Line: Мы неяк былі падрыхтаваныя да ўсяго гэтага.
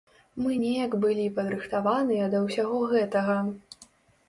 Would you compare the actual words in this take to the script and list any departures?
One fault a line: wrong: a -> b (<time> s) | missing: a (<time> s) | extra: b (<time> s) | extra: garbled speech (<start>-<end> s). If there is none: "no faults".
no faults